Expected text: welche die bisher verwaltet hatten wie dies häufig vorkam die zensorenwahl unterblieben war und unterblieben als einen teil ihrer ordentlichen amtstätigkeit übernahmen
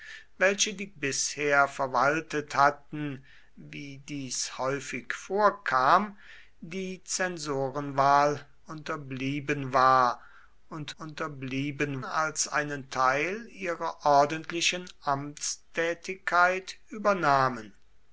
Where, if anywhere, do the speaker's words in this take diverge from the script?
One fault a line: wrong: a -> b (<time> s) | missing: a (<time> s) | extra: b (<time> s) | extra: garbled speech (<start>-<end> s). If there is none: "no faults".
no faults